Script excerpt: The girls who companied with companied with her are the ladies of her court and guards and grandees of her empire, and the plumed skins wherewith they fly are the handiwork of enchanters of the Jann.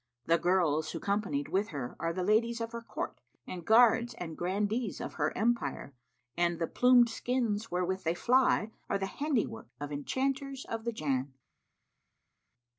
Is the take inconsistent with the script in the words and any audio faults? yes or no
yes